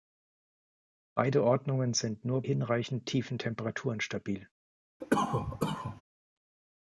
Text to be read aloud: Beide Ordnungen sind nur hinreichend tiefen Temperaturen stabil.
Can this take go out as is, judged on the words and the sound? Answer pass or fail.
fail